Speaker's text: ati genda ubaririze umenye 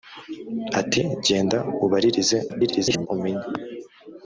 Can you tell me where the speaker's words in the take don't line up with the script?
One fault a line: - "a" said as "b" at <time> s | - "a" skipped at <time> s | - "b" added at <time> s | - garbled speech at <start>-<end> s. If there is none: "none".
- garbled speech at 2.5-3.1 s